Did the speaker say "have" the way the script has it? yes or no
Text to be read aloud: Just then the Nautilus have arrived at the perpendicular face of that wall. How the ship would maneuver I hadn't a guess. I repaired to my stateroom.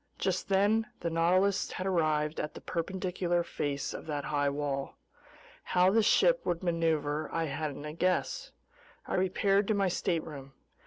no